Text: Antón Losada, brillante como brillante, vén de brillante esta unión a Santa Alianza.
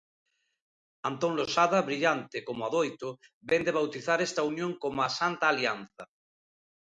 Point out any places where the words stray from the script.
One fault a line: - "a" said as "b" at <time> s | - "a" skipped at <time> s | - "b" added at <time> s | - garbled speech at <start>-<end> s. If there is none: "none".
- "brillante" said as "adoito" at 2.7 s
- "brillante" said as "bautizar" at 3.8 s
- "como" added at 4.8 s